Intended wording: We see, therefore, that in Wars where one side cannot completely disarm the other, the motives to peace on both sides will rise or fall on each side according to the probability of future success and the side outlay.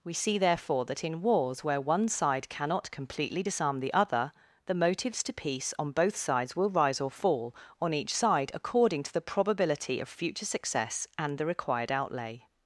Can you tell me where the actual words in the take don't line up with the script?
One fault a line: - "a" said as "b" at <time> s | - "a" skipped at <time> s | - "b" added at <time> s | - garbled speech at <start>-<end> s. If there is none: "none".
- "side" said as "required" at 11.5 s